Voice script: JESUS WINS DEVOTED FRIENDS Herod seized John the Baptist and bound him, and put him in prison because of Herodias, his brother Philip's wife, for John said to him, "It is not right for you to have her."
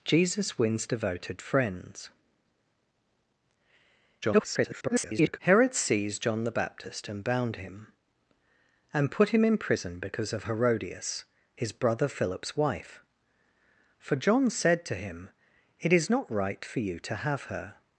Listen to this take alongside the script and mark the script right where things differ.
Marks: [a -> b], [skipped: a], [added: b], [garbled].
JESUS WINS DEVOTED FRIENDS [garbled] Herod seized John the Baptist and bound him, and put him in prison because of Herodias, his brother Philip's wife, for John said to him, "It is not right for you to have her."